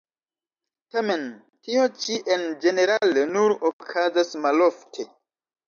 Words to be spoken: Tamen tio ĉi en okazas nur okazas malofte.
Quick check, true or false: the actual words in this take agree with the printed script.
false